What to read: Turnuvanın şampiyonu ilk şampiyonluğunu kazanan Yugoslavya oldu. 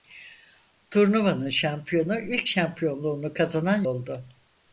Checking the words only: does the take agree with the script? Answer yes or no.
no